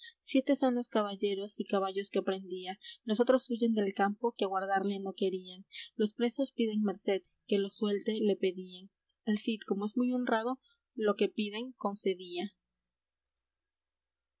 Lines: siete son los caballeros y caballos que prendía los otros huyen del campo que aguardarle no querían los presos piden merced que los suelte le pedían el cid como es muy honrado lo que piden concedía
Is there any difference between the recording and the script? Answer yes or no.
no